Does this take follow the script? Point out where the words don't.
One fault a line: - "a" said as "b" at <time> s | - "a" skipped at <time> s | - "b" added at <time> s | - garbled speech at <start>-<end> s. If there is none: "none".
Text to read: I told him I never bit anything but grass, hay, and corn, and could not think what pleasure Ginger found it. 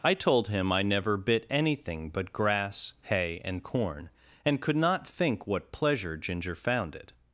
none